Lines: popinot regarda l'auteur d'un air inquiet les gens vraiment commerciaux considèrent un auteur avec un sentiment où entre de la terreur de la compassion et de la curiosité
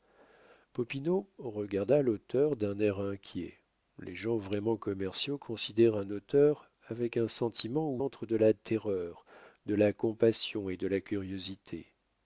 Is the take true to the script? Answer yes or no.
yes